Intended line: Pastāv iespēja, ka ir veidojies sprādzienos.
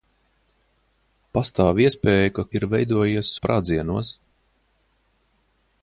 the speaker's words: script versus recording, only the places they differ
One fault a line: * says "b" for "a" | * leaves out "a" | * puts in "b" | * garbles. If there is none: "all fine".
all fine